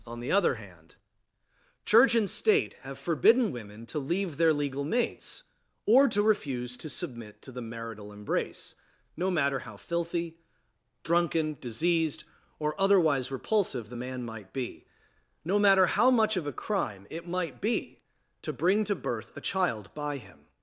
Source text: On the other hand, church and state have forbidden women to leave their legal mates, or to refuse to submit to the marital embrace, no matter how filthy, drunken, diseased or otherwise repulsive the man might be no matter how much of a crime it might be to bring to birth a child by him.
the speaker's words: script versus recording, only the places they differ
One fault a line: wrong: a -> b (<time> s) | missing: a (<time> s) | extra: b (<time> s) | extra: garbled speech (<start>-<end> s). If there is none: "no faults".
no faults